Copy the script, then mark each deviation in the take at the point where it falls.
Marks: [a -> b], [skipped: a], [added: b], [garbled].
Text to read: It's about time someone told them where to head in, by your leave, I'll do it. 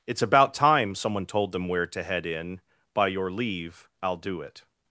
It's about time someone told them where to head in, by your leave, I'll do it.